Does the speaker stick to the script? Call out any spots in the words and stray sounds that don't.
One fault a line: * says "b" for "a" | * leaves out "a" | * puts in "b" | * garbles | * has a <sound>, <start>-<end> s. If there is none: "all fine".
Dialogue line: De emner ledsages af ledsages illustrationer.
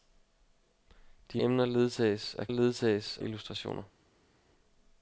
all fine